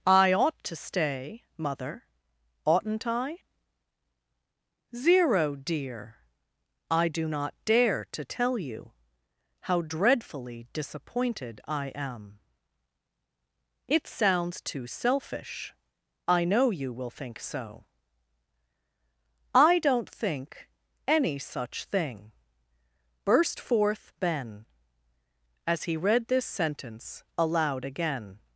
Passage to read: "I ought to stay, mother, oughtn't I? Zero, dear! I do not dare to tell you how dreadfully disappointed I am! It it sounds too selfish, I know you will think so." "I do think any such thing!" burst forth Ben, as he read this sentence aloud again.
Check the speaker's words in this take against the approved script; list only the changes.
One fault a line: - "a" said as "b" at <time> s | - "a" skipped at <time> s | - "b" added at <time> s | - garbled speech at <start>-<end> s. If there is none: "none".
- "it" skipped at 14.1 s
- "do" said as "don't" at 19.8 s